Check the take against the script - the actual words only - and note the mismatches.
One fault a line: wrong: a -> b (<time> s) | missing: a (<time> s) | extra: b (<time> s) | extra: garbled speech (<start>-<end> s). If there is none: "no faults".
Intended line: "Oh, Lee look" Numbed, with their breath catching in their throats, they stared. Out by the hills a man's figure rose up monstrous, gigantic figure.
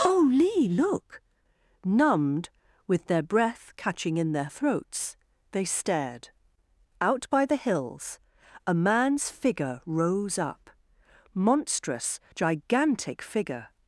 no faults